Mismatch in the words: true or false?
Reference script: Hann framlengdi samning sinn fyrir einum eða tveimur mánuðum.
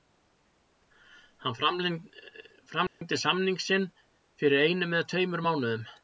false